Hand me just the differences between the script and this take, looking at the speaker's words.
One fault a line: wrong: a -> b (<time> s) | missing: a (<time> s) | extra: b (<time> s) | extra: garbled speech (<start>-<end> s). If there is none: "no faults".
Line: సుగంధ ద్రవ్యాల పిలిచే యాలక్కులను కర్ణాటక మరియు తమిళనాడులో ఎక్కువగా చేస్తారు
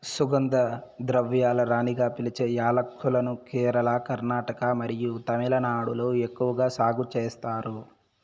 extra: రాణిగా (1.6 s)
extra: కేరళ (3.5 s)
extra: సాగు (6.8 s)